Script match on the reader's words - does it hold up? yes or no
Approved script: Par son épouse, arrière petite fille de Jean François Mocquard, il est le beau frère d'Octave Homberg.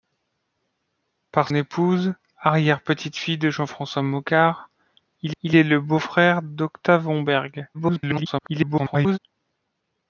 no